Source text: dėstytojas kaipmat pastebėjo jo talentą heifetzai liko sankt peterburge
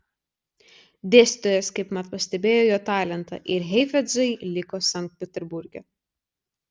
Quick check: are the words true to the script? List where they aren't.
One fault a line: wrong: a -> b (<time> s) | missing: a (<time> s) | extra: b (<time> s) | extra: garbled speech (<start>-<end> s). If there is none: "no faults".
extra: ir (3.6 s)